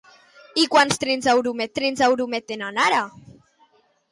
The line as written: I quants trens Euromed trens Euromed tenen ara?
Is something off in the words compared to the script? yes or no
no